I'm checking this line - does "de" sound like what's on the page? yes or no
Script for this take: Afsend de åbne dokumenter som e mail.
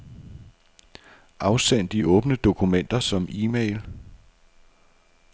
yes